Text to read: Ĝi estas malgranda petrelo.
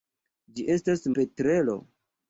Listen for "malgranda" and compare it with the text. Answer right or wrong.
wrong